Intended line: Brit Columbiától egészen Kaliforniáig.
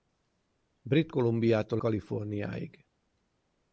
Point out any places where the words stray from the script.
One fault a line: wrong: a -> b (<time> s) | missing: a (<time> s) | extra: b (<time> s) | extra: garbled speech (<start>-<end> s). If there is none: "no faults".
missing: egészen (1.8 s)